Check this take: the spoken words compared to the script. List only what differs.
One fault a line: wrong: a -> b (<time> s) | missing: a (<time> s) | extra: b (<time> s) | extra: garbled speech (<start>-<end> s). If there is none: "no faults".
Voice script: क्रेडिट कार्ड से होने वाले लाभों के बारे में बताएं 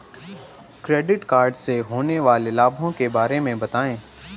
no faults